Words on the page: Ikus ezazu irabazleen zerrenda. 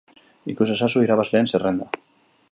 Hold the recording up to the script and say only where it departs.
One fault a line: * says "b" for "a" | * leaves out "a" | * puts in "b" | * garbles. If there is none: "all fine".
all fine